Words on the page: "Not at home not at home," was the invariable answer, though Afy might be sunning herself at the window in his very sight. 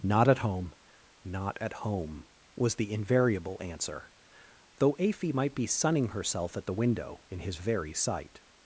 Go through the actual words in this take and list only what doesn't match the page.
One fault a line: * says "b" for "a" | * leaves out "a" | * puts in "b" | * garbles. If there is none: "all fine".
all fine